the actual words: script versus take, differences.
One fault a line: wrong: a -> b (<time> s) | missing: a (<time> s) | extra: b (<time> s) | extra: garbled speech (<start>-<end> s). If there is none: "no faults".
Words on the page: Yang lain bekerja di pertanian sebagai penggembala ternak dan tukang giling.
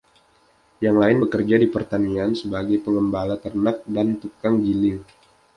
no faults